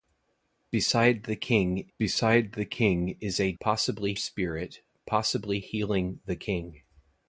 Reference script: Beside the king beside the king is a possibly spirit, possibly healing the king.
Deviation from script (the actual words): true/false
false